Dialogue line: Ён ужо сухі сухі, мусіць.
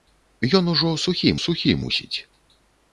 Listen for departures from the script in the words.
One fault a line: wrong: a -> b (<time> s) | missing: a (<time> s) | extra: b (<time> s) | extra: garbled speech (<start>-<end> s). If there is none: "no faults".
no faults